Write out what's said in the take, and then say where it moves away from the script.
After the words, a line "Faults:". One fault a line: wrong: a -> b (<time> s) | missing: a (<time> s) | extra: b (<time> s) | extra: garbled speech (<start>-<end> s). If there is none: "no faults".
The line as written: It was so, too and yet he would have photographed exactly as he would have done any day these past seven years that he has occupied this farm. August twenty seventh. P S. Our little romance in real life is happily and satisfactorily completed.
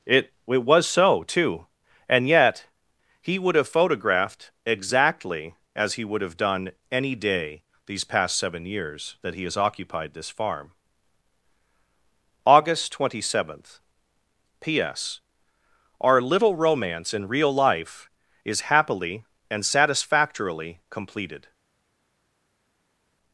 It it was so, too and yet he would have photographed exactly as he would have done any day these past seven years that he has occupied this farm. August twenty seventh. P S. Our little romance in real life is happily and satisfactorily completed.
Faults:
extra: it (0.5 s)